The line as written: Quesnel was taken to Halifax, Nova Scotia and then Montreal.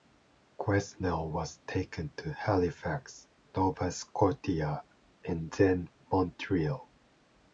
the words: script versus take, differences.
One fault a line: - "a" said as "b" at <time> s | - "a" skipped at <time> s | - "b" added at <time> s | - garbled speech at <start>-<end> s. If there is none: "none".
none